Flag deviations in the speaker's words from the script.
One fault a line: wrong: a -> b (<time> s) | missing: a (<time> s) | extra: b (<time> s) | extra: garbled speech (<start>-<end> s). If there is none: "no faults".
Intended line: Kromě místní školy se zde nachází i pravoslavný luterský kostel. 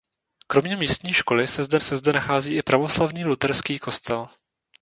extra: se zde (1.8 s)